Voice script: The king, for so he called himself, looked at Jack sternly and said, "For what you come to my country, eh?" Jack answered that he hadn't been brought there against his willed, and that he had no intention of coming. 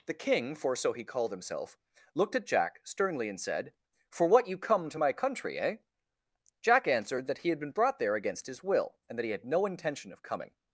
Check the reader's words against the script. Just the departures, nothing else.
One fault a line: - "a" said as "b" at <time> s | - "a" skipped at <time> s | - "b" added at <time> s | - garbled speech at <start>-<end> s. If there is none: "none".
- "hadn't" said as "had" at 7.5 s
- "willed" said as "will" at 8.6 s